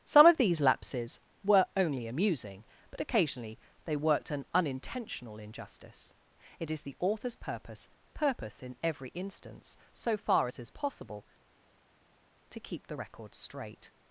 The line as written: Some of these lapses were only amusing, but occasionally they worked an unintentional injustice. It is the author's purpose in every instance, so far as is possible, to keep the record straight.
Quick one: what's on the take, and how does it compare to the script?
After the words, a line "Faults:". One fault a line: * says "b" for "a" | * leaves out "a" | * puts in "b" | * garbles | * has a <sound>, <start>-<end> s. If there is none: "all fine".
Some of these lapses were only amusing, but occasionally they worked an unintentional injustice. It is the author's purpose purpose in every instance, so far as is possible, to keep the record straight.
Faults:
* puts in "purpose"